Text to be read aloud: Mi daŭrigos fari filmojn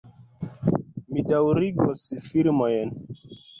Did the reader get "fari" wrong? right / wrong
wrong